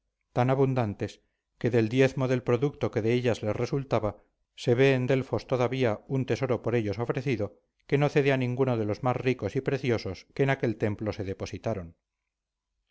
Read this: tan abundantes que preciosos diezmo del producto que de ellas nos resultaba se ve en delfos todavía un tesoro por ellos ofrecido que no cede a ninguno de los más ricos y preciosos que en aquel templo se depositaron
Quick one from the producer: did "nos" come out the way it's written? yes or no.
no